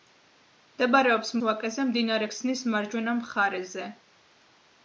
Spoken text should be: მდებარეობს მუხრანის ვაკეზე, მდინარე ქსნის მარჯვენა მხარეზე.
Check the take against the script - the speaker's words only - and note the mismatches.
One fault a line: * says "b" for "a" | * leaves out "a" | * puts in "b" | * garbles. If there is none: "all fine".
* leaves out "მუხრანის"